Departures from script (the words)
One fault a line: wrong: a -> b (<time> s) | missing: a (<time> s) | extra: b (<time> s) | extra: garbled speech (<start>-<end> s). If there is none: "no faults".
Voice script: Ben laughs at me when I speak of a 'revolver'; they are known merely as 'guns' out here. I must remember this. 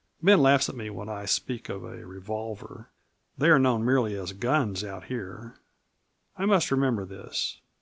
no faults